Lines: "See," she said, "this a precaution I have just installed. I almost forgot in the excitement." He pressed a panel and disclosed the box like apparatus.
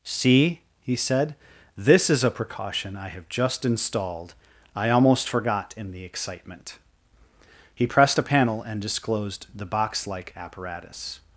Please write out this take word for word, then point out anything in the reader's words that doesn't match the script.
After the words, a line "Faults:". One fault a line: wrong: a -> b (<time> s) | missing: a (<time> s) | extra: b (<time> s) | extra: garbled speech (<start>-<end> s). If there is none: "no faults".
"See," he said, "this is a precaution I have just installed. I almost forgot in the excitement." He pressed a panel and disclosed the box like apparatus.
Faults:
wrong: she -> he (0.8 s)
extra: is (2.1 s)